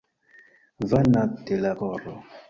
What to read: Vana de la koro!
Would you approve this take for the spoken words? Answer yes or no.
yes